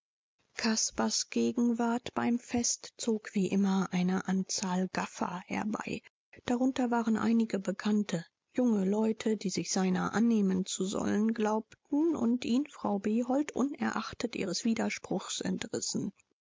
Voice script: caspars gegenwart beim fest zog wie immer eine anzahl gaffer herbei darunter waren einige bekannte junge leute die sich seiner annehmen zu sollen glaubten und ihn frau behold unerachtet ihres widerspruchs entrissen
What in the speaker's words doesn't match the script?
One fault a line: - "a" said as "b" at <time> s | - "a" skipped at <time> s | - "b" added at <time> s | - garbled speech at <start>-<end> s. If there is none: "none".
none